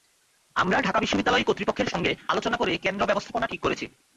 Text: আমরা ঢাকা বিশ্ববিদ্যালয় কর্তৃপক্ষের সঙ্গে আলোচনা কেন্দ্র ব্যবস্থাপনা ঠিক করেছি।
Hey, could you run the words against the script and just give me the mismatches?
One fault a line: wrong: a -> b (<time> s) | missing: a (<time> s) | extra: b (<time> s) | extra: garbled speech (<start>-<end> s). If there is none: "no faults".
extra: করে (2.6 s)